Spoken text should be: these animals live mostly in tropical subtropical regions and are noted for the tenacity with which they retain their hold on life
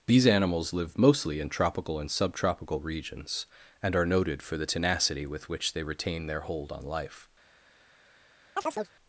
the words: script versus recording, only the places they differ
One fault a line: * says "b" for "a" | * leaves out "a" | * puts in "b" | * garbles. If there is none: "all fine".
* puts in "and"